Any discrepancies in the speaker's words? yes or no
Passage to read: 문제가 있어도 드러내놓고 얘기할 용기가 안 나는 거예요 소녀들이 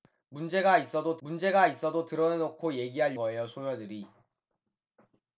yes